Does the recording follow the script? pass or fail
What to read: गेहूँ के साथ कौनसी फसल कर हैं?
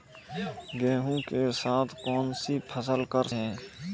pass